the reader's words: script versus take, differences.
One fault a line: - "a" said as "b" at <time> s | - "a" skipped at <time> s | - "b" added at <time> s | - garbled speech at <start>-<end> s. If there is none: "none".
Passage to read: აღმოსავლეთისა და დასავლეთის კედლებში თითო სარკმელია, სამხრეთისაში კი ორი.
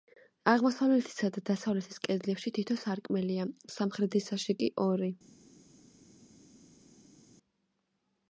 none